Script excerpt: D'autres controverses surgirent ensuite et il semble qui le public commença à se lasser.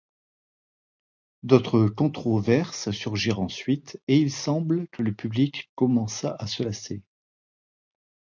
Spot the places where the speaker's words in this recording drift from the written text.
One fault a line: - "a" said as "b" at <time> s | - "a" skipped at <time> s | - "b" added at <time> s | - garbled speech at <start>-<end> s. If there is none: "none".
- "qui" said as "que" at 4.9 s